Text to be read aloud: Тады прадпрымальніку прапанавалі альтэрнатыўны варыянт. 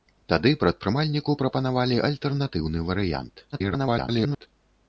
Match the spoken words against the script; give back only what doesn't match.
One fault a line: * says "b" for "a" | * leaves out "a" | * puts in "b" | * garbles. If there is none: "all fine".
* garbles